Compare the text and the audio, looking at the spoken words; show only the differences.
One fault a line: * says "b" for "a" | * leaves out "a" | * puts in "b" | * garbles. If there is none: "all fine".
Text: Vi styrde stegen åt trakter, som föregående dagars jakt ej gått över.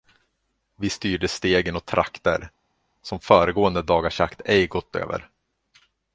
all fine